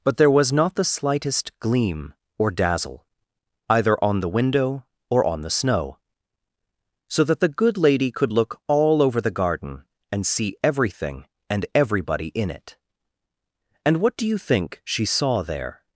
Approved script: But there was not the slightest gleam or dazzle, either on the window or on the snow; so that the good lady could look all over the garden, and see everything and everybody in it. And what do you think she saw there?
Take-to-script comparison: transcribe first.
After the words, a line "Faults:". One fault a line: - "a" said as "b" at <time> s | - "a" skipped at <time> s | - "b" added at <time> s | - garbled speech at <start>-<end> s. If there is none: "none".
But there was not the slightest gleam or dazzle, either on the window or on the snow; so that the good lady could look all over the garden, and see everything and everybody in it. And what do you think she saw there?
Faults:
none